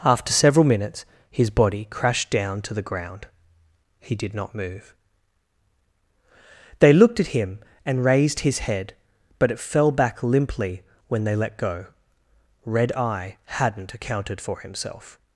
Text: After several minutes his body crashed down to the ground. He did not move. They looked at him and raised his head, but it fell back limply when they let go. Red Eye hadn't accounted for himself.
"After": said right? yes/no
yes